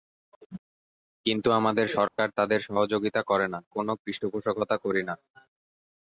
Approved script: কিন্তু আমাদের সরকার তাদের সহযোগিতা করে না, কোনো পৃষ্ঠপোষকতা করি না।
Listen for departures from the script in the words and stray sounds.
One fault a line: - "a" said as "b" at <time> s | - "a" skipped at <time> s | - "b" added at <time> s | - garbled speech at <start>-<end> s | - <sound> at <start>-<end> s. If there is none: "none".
- dropout at 2.1-2.2 s